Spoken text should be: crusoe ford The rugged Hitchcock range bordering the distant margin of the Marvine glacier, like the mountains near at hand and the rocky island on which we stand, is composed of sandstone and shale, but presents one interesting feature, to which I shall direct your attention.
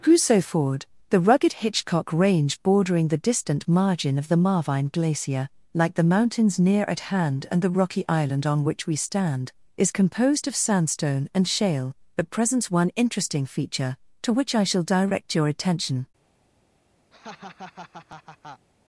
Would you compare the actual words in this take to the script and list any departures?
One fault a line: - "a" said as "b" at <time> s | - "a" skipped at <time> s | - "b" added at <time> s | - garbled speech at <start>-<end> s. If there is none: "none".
none